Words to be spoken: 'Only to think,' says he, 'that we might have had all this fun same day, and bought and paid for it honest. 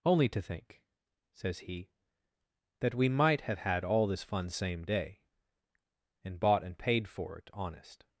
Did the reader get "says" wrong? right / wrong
right